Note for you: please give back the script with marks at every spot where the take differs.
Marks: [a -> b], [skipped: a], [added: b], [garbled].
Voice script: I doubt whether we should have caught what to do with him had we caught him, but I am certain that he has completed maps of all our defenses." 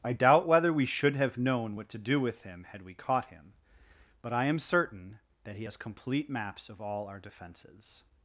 I doubt whether we should have [caught -> known] what to do with him had we caught him, but I am certain that he has [completed -> complete] maps of all our defenses."